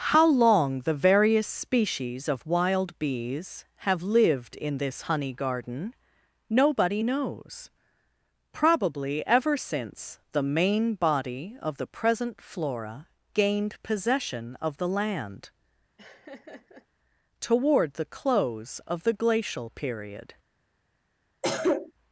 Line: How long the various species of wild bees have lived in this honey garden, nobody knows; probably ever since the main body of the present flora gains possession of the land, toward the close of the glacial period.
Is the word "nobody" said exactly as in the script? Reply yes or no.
yes